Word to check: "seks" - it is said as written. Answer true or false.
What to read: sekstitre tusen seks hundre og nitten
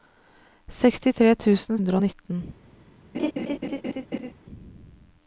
false